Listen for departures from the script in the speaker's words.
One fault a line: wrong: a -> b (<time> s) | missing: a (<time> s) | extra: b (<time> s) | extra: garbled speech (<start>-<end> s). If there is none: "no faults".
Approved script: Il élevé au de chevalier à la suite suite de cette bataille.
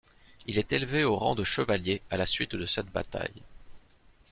extra: est (0.6 s)
extra: rang (1.1 s)
missing: suite (2.5 s)